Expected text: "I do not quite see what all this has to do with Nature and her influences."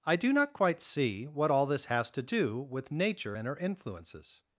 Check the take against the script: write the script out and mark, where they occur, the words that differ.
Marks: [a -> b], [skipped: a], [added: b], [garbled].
"I do not quite see what all this has to do with Nature and her influences."